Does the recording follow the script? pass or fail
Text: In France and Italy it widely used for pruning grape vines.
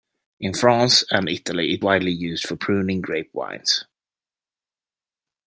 pass